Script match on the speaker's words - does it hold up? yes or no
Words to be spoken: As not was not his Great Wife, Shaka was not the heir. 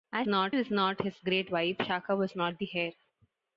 yes